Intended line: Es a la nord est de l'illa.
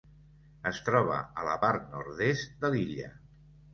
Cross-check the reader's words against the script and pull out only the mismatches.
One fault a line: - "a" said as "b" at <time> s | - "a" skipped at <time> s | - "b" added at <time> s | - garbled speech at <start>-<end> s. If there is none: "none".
- "troba" added at 0.9 s
- "part" added at 1.6 s